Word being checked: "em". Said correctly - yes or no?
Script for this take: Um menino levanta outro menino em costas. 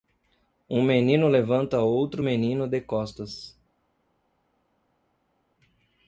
no